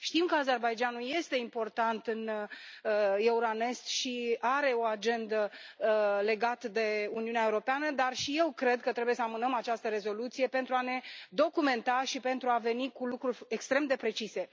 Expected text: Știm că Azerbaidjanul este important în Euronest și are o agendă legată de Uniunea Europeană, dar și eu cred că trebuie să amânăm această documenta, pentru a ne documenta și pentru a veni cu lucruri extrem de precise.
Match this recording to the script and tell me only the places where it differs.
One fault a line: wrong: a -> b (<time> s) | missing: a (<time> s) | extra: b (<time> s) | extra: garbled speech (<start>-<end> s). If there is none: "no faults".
wrong: documenta -> rezoluție (9.9 s)